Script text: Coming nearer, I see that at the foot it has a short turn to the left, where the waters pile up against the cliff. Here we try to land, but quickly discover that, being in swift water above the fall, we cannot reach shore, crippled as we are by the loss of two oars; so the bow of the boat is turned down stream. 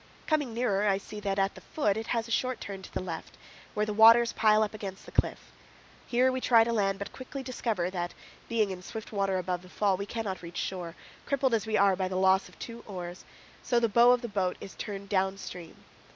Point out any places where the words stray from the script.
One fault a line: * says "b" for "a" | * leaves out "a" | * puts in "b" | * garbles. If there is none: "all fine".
all fine